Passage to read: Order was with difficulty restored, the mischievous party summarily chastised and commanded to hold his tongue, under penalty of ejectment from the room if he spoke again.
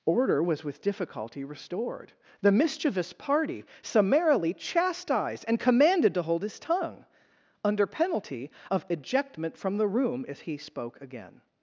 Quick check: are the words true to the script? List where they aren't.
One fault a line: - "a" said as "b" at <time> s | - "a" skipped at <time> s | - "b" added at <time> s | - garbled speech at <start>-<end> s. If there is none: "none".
none